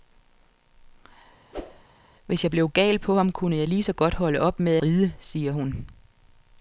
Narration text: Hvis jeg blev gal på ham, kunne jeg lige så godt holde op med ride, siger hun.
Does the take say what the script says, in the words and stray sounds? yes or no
no